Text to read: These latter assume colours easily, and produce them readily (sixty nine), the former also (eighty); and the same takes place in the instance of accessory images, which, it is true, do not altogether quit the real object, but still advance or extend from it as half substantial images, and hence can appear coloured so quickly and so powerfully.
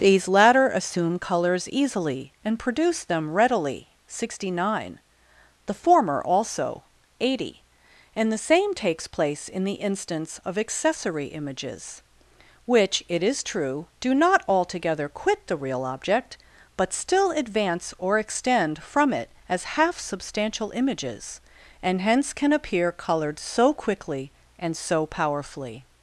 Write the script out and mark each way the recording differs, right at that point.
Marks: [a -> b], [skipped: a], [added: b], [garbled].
These latter assume colours easily, and produce them readily (sixty nine), the former also (eighty); and the same takes place in the instance of accessory images, which, it is true, do not altogether quit the real object, but still advance or extend from it as half substantial images, and hence can appear coloured so quickly and so powerfully.